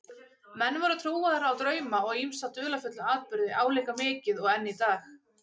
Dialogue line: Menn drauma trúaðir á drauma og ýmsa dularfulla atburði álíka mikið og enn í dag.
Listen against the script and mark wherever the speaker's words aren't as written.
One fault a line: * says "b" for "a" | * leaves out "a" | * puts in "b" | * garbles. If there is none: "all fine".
* says "voru" for "drauma"